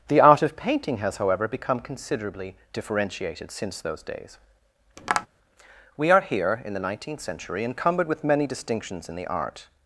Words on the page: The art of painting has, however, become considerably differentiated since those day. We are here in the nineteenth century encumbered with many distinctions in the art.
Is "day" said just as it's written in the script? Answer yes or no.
no